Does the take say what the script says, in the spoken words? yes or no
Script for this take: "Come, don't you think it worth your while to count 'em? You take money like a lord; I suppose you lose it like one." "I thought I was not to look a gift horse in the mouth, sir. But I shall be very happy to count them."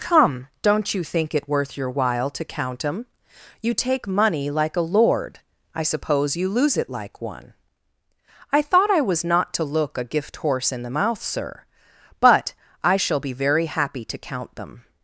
yes